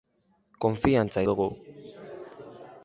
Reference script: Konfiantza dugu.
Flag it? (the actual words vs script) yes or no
no